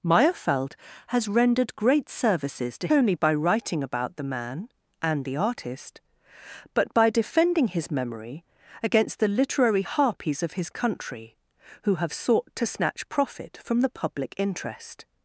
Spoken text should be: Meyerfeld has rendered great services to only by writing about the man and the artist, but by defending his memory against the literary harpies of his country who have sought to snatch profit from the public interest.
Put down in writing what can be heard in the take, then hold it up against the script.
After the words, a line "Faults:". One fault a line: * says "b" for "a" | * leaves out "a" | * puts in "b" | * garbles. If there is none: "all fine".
Meyerfeld has rendered great services to only by writing about the man and the artist, but by defending his memory against the literary harpies of his country who have sought to snatch profit from the public interest.
Faults:
all fine